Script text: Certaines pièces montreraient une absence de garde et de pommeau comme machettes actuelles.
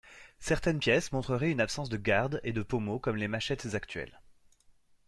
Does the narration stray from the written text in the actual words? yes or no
yes